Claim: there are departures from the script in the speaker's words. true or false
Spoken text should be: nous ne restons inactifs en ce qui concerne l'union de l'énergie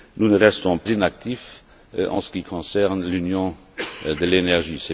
false